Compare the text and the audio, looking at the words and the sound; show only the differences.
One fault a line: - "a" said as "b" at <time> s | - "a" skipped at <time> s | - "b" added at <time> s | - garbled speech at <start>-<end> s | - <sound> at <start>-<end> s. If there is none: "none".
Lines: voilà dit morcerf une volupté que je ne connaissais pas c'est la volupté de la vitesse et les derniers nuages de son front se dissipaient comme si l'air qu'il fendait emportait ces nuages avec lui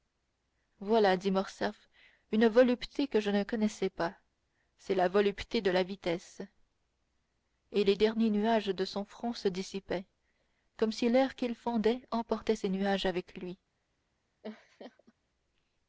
- laugh at 14.4-15.1 s